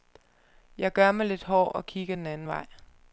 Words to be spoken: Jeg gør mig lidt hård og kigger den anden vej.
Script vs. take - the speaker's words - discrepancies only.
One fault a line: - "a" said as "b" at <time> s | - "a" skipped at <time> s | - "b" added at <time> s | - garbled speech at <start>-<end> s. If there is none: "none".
none